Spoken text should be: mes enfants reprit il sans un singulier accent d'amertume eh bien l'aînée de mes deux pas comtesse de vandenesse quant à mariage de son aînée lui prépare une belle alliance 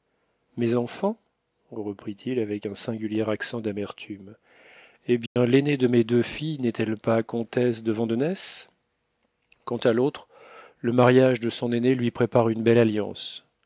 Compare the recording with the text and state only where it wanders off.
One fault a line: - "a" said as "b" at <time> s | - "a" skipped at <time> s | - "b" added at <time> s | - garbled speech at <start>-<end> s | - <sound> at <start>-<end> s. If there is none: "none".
- "sans" said as "avec" at 2.4 s
- dropout at 5.3-5.4 s
- "filles n'est elle" added at 6.2 s
- "l'autre le" added at 9.9 s